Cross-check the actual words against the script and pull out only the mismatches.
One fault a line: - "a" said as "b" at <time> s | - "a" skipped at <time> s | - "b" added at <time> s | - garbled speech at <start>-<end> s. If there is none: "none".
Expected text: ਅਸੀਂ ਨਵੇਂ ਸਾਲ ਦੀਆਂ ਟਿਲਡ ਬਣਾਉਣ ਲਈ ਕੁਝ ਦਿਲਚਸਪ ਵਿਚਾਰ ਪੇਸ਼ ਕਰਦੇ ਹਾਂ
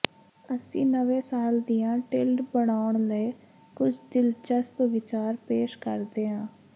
none